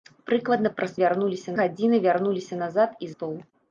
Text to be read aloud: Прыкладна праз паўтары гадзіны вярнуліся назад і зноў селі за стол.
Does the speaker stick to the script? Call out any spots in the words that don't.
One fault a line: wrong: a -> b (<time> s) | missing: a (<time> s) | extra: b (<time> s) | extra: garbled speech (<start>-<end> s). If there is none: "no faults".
wrong: паўтары -> вярнуліся (1.0 s)
missing: зноў селі за (3.1 s)